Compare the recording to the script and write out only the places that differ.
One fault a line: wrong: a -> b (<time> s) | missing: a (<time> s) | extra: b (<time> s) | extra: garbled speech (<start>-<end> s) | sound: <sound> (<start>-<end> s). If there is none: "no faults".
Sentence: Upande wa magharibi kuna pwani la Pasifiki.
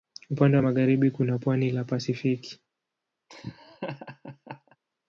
sound: laugh (3.3-4.8 s)